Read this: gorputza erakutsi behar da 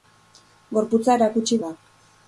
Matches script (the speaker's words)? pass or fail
fail